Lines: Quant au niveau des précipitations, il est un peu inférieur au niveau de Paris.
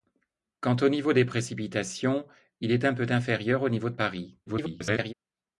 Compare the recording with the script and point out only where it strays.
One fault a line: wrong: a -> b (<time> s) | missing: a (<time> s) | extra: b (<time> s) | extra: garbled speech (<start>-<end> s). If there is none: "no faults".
extra: garbled speech (4.5-5.1 s)